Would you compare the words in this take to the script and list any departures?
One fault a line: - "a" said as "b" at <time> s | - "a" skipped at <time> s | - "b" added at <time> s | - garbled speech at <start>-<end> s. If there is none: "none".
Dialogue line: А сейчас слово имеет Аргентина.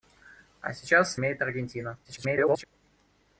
- "слово" skipped at 1.1 s
- garbled speech at 2.0-2.6 s